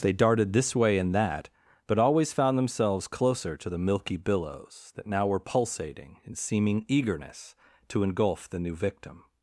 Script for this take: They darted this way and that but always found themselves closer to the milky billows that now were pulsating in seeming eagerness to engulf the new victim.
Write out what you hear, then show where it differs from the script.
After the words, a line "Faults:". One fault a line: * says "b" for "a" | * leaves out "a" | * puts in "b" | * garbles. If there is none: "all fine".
They darted this way and that but always found themselves closer to the milky billows that now were pulsating in seeming eagerness to engulf the new victim.
Faults:
all fine